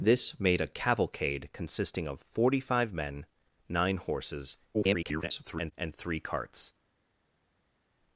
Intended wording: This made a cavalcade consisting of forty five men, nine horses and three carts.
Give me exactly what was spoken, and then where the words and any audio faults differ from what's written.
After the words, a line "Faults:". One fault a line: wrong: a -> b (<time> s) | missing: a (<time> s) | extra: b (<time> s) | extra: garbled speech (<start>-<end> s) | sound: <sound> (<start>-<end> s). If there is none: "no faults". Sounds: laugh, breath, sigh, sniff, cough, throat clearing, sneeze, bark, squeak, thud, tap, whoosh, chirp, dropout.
This made a cavalcade consisting of forty five men, nine horses [garbled] and three carts.
Faults:
extra: garbled speech (4.7-5.7 s)